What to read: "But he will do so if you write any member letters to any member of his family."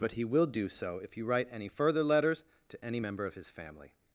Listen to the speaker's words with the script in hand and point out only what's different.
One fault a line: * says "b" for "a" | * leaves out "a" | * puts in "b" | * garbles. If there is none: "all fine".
* says "further" for "member"